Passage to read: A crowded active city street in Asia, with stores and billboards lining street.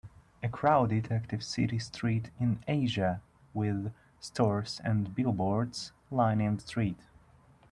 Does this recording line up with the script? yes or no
yes